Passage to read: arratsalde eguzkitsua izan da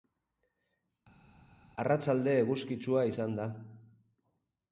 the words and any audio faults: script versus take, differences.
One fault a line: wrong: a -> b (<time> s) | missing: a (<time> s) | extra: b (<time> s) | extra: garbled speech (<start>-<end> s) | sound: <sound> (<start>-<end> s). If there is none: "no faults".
no faults